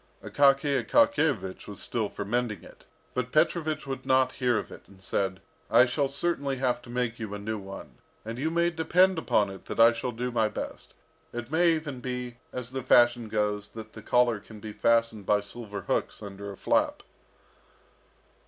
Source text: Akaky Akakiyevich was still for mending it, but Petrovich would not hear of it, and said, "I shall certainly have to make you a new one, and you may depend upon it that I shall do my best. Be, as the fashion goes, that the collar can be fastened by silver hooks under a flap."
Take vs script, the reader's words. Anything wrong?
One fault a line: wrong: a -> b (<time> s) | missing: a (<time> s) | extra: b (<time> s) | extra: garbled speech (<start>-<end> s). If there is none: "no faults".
extra: It may even (11.3 s)